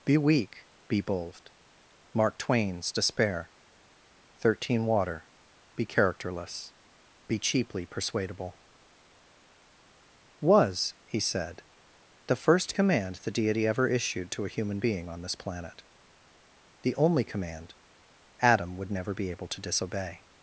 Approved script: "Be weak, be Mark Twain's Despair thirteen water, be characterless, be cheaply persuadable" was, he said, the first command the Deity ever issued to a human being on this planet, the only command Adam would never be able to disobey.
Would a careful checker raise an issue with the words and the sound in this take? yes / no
yes